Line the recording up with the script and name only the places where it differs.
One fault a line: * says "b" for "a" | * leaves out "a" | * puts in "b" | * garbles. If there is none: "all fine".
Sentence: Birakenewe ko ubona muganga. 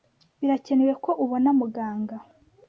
all fine